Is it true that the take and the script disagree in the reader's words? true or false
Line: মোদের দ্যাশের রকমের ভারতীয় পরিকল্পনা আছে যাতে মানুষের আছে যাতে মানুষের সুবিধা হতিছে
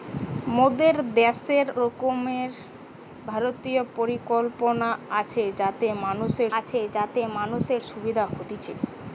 false